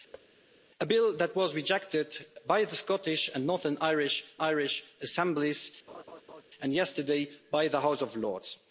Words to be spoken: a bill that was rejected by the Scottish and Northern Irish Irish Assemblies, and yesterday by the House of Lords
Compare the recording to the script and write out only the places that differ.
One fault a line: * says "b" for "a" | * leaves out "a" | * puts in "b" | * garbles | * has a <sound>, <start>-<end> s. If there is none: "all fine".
* has a thud, 0.1-0.3 s
* has a laugh, 5.9-6.4 s